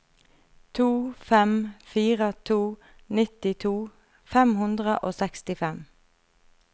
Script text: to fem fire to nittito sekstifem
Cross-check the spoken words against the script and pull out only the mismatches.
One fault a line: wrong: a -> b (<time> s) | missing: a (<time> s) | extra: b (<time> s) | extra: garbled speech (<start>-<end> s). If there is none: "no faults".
extra: fem hundre og (4.3 s)